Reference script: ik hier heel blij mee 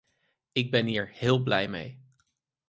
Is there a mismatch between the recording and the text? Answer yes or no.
yes